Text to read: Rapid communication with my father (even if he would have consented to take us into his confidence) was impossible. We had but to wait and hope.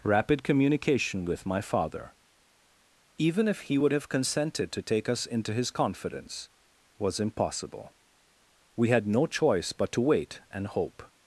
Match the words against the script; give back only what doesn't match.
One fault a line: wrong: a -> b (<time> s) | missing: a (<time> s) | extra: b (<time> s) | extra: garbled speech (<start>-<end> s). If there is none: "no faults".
extra: no choice (9.1 s)